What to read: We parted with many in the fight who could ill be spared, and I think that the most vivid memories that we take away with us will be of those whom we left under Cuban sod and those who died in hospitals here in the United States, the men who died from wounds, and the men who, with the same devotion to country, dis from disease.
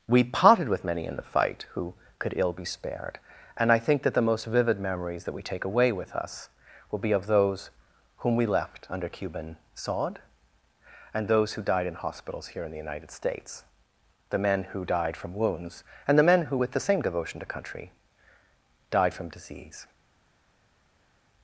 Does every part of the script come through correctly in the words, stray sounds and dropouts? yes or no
no